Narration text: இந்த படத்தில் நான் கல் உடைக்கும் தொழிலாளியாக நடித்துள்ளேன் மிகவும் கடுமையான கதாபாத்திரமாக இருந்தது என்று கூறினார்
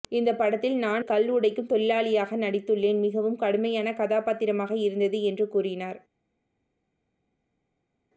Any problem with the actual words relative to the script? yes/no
no